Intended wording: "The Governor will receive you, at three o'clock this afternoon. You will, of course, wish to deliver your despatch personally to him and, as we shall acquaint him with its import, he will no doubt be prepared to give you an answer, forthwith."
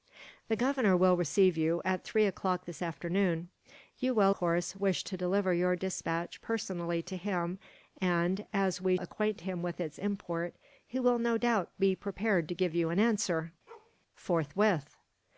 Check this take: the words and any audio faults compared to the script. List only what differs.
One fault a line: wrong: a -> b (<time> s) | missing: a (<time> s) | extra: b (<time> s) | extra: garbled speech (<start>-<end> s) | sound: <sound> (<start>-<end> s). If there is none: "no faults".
missing: of (4.3 s)
missing: shall (9.0 s)
sound: bark (13.7-14.0 s)